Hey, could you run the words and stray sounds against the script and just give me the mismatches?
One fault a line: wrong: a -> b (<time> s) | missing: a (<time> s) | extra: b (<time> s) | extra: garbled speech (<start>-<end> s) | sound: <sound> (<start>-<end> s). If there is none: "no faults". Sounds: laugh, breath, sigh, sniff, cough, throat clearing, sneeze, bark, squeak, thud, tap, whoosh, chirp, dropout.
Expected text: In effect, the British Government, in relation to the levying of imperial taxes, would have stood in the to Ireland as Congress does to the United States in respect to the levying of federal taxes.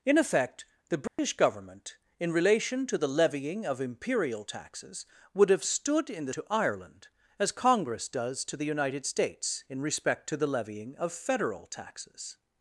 sound: dropout (1.1-1.2 s)